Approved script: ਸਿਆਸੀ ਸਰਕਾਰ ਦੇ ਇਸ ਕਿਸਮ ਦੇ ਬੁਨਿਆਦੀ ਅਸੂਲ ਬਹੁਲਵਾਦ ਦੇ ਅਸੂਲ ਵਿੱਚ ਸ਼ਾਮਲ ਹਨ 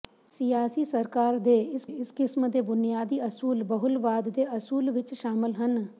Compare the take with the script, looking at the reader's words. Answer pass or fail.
fail